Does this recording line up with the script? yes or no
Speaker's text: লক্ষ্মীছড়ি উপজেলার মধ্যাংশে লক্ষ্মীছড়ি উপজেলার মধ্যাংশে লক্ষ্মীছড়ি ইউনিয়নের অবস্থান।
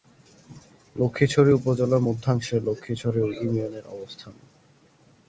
no